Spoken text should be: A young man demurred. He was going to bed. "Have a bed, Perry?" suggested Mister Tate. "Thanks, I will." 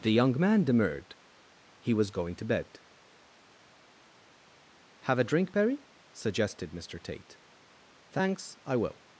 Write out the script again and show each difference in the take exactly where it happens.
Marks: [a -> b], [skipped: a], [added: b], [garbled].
[A -> The] young man demurred. He was going to bed. "Have a [bed, -> drink] Perry?" suggested Mister Tate. "Thanks, I will."